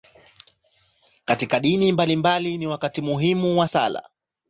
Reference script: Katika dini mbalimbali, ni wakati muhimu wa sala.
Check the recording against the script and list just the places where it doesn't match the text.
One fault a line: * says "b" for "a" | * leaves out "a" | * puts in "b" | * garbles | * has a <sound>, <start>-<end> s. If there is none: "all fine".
all fine